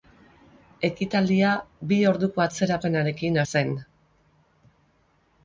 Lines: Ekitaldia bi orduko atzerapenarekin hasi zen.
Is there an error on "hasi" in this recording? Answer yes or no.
yes